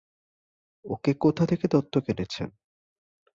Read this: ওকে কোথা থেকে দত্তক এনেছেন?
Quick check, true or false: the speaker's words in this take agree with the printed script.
true